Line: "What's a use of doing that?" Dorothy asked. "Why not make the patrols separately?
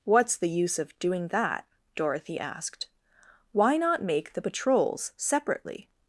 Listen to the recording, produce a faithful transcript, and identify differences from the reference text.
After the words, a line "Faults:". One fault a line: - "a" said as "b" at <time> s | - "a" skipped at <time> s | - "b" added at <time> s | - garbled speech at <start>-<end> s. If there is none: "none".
"What's the use of doing that?" Dorothy asked. "Why not make the patrols separately?
Faults:
- "a" said as "the" at 0.4 s